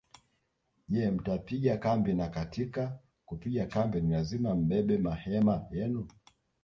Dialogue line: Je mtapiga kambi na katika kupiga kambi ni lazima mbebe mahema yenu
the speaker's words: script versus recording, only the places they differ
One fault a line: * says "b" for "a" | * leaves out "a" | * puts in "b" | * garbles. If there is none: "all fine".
all fine